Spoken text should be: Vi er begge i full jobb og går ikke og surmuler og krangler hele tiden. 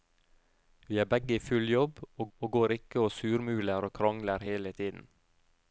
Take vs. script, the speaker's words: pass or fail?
fail